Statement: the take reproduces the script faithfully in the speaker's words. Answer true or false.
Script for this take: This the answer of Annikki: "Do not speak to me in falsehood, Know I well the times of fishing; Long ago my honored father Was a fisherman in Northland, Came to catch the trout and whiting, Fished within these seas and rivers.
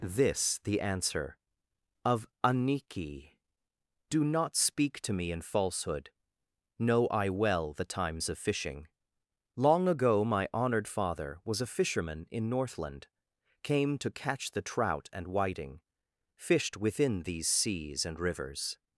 true